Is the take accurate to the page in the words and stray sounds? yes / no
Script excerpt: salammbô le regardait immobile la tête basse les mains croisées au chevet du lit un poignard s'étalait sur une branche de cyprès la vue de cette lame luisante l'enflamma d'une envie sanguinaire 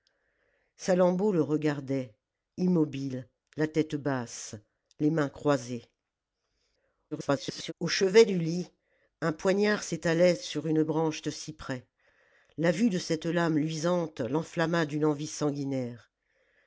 no